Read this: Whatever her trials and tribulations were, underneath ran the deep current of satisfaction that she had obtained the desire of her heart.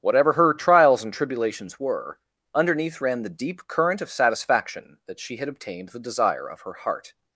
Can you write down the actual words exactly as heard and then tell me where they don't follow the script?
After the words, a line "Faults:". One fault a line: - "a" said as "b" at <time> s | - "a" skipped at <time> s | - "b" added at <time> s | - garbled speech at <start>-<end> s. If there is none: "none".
Whatever her trials and tribulations were, underneath ran the deep current of satisfaction that she had obtained the desire of her heart.
Faults:
none